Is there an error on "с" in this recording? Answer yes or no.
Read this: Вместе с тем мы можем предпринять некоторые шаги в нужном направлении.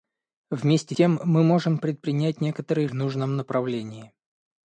yes